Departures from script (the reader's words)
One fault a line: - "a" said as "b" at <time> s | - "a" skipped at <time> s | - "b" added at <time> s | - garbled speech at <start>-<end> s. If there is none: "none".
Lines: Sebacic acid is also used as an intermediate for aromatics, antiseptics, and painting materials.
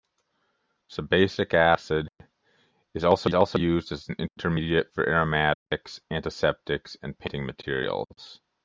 - "also" added at 3.3 s